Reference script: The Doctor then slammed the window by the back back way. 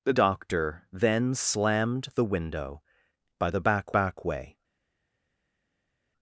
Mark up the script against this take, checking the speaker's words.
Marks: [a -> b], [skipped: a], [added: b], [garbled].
The Doctor then slammed the window by the back back way.